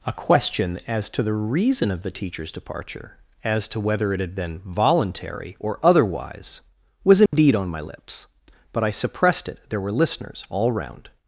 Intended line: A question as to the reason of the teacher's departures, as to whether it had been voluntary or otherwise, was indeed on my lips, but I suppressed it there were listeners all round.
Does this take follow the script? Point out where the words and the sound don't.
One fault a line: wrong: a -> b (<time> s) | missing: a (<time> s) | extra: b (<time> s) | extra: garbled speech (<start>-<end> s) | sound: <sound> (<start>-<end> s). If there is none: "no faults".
wrong: departures -> departure (2.5 s)
sound: dropout (7.3-7.3 s)